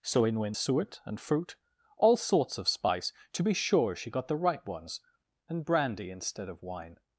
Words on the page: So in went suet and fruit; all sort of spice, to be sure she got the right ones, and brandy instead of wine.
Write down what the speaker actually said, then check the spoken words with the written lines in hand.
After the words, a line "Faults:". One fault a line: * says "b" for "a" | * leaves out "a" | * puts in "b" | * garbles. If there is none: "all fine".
So in went suet and fruit; all sorts of spice, to be sure she got the right ones, and brandy instead of wine.
Faults:
* says "sorts" for "sort"